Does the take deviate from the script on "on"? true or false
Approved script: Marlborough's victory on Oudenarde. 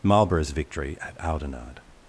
true